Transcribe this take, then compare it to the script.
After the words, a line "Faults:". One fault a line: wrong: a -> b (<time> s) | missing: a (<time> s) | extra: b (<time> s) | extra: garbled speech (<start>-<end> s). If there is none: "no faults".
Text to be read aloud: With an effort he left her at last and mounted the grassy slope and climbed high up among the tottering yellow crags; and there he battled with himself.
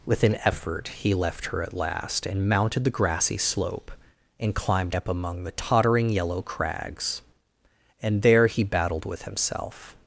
With an effort he left her at last and mounted the grassy slope and climbed up among the tottering yellow crags; and there he battled with himself.
Faults:
missing: high (5.0 s)